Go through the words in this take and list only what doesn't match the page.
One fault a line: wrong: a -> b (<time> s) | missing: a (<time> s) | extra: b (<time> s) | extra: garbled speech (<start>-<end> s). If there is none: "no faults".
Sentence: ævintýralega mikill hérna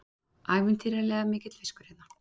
extra: fiskur (1.6 s)